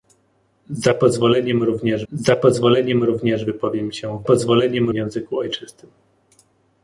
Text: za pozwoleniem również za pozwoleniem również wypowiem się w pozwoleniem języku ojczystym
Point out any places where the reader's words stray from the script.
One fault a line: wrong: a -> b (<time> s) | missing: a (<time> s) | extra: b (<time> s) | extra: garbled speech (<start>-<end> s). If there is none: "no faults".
no faults